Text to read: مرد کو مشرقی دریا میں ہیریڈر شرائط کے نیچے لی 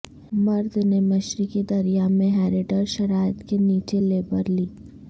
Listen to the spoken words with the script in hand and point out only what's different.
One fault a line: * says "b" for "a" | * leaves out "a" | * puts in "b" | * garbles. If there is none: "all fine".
* says "نے" for "کو"
* puts in "لیبر"